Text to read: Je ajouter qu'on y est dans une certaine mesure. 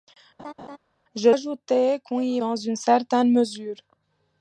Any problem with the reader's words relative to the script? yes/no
no